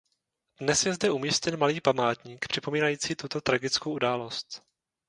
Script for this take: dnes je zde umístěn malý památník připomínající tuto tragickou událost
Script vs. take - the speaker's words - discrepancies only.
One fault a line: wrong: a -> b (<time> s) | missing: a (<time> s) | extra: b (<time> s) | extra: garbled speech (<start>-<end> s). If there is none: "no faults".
no faults